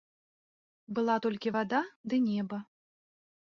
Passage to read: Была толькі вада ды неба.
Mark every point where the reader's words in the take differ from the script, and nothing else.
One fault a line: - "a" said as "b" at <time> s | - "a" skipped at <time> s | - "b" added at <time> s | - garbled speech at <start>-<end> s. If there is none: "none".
none